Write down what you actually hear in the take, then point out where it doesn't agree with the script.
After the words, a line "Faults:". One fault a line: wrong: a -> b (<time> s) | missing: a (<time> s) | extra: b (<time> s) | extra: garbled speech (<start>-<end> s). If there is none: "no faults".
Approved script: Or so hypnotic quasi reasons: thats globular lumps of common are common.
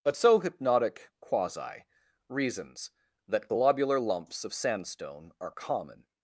But so hypnotic quasi reasons: that globular lumps of sandstone are common.
Faults:
wrong: Or -> But (0.0 s)
wrong: thats -> that (3.3 s)
wrong: common -> sandstone (4.5 s)